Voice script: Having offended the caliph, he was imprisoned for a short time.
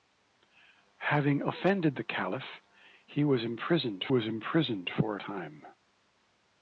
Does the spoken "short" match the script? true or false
false